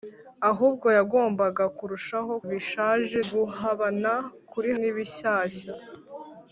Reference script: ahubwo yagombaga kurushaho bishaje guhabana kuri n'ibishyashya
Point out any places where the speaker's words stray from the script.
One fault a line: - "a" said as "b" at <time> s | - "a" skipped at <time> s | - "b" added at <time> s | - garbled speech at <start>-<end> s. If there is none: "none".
none